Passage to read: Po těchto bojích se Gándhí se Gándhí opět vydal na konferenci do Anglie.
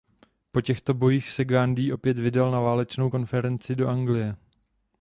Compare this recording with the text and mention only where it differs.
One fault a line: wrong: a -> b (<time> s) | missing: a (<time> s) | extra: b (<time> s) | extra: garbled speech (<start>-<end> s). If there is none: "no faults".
missing: se Gándhí (1.9 s)
extra: válečnou (2.6 s)